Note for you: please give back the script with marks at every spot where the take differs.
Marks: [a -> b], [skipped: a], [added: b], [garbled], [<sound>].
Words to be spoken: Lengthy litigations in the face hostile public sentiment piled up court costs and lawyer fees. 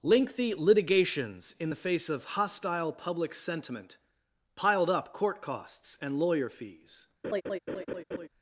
Lengthy litigations in the face [added: of] hostile public sentiment piled up court costs and lawyer fees. [laugh]